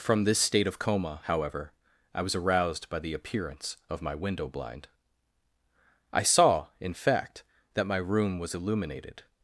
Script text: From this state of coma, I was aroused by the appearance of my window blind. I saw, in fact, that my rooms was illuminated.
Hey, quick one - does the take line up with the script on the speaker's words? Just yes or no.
no